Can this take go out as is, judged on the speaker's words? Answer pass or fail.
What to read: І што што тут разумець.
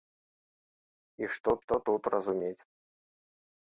pass